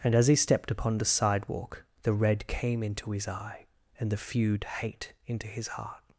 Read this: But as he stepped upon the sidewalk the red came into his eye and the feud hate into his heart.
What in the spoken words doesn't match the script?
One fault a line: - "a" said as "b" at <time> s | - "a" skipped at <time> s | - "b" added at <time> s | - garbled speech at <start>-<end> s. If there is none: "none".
- "But" said as "And" at 0.0 s